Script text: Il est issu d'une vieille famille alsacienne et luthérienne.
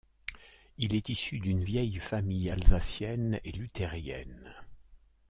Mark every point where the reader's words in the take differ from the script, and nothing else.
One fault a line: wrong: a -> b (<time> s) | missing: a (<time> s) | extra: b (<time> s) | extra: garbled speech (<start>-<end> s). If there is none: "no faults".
no faults